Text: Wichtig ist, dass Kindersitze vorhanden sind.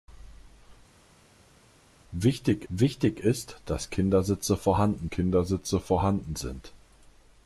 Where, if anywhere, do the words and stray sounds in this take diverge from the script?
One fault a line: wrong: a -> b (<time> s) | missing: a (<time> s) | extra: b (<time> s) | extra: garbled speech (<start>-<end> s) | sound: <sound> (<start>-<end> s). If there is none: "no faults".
extra: wichtig (2.7 s)
extra: Kindersitze vorhanden (5.1 s)